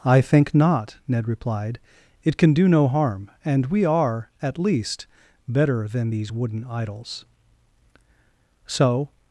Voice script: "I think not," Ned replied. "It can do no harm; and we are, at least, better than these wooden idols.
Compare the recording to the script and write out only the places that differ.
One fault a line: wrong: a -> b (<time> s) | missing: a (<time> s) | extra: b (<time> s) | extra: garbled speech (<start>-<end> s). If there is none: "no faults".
extra: So (8.7 s)